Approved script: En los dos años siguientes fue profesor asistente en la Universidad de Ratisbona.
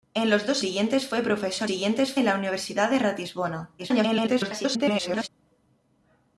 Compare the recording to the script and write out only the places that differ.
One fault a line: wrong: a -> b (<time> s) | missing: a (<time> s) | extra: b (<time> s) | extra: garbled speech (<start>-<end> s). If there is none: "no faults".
missing: años (0.6 s)
wrong: asistente -> siguientes (1.6 s)
extra: garbled speech (3.8-5.3 s)